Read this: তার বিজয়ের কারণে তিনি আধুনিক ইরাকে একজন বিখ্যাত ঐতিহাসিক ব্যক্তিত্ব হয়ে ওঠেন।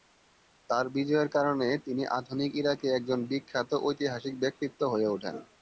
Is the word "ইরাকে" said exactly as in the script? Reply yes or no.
yes